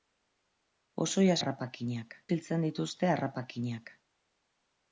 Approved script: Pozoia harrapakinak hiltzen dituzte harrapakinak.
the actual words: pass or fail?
pass